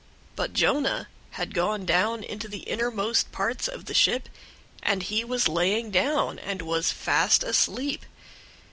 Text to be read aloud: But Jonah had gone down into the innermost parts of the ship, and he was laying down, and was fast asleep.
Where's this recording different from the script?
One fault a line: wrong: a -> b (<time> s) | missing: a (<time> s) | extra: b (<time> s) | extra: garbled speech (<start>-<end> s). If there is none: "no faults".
no faults